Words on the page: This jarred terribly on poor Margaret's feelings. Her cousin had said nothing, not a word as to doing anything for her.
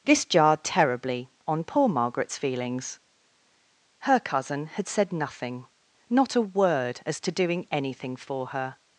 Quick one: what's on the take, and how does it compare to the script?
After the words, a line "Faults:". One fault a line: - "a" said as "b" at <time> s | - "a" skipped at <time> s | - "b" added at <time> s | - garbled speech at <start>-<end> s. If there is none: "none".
This jarred terribly on poor Margaret's feelings. Her cousin had said nothing, not a word as to doing anything for her.
Faults:
none